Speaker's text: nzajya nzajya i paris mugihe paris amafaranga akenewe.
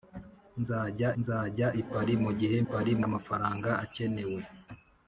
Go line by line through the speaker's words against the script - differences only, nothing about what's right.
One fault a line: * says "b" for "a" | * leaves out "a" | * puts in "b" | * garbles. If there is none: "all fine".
all fine